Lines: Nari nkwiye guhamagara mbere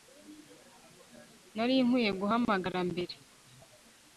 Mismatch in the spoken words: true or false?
false